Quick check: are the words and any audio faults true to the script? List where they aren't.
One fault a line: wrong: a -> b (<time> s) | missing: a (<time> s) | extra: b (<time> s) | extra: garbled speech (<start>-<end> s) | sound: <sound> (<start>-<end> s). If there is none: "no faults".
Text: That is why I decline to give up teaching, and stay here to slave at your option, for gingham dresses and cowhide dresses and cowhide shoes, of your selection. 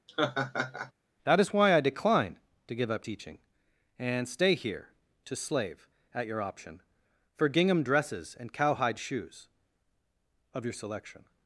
sound: laugh (0.1-0.9 s)
missing: dresses and cowhide (9.0 s)